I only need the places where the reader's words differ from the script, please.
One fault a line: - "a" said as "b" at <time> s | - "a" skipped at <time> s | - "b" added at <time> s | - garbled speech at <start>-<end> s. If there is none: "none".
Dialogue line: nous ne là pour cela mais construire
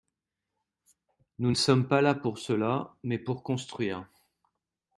- "sommes pas" added at 1.5 s
- "pour" added at 3.2 s